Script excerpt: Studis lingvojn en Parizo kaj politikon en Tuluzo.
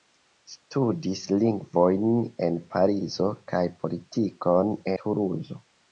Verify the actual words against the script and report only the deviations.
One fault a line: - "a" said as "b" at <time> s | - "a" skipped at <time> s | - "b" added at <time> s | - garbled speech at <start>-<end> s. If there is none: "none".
- "en" skipped at 4.8 s